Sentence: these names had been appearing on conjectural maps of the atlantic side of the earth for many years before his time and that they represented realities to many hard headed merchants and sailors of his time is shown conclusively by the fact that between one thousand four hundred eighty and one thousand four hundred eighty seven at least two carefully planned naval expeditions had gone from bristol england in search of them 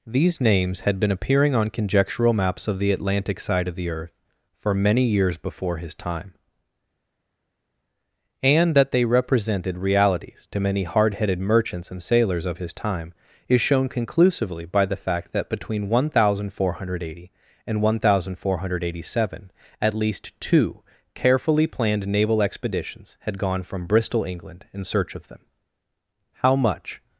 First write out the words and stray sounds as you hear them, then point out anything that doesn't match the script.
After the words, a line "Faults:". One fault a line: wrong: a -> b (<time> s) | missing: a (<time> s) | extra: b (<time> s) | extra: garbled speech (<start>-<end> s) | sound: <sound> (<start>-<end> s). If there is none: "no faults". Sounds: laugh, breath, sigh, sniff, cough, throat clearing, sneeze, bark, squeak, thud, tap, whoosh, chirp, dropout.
these names had been appearing on conjectural maps of the atlantic side of the earth for many years before his time and that they represented realities to many hard headed merchants and sailors of his time is shown conclusively by the fact that between one thousand four hundred eighty and one thousand four hundred eighty seven at least two carefully planned naval expeditions had gone from bristol england in search of them how much
Faults:
extra: how much (26.3 s)